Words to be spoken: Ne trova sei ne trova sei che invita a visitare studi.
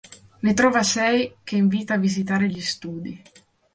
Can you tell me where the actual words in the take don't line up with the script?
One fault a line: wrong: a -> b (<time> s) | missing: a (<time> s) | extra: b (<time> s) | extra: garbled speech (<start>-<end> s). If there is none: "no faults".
missing: ne trova sei (1.4 s)
extra: gli (2.4 s)